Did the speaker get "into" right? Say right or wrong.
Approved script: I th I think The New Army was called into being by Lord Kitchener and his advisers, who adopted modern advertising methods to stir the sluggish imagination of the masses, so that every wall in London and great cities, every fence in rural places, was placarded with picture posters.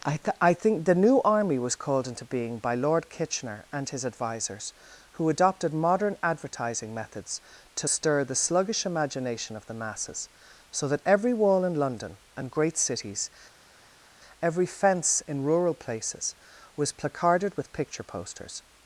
right